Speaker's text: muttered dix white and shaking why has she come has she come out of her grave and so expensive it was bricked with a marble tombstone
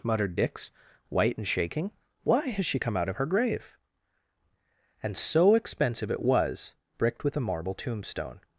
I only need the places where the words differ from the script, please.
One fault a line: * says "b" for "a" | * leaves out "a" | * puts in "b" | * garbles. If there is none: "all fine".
* leaves out "has she come"